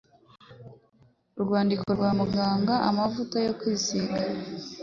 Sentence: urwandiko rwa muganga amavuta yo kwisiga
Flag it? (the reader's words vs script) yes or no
no